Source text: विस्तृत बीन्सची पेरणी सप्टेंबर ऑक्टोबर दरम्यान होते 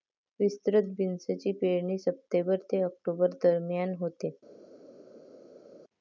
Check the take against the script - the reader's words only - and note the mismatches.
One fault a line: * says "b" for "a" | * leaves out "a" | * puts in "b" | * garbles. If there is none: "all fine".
* puts in "ते"